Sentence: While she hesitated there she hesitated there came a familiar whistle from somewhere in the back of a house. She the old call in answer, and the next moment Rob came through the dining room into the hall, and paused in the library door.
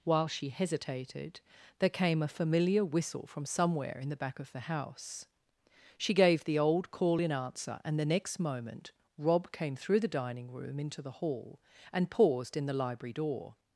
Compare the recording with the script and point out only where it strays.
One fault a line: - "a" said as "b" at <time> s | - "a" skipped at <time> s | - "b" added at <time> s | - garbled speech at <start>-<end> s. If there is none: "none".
- "she hesitated there" skipped at 1.9 s
- "a" said as "the" at 4.5 s
- "gave" added at 6.2 s